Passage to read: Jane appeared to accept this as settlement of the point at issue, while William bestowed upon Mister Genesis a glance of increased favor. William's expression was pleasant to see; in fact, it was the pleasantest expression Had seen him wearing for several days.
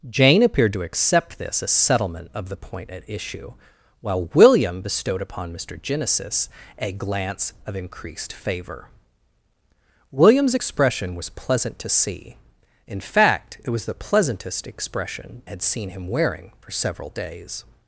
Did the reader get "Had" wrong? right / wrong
right